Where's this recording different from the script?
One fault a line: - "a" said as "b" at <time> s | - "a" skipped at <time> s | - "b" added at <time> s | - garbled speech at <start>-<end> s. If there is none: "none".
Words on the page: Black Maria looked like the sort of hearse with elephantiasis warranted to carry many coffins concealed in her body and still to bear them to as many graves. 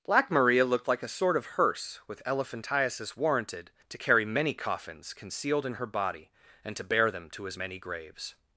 - "the" said as "a" at 1.0 s
- "still" skipped at 6.7 s